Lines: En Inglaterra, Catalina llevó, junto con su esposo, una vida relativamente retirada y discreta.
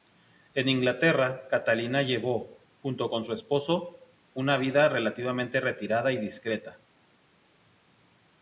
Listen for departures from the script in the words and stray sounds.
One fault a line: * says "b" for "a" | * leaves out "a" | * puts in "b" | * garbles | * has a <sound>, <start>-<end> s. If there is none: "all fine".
all fine